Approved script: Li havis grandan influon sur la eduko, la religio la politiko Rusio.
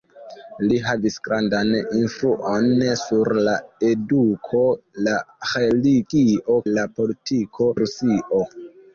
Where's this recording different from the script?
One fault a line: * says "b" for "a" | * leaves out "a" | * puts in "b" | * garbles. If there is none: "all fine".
all fine